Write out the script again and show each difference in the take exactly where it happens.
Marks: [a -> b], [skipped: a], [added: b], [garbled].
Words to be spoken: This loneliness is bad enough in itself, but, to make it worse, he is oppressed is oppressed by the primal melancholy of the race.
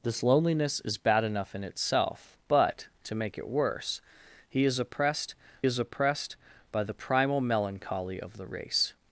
This loneliness is bad enough in itself, but, to make it worse, he is oppressed is oppressed by the primal melancholy of the race.